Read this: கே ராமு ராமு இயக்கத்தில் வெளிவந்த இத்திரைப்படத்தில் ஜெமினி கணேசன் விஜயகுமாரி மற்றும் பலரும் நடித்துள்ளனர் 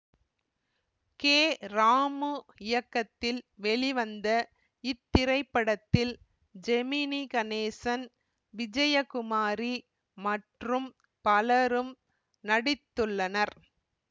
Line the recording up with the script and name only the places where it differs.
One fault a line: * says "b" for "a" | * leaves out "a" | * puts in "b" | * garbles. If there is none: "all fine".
* leaves out "ராமு"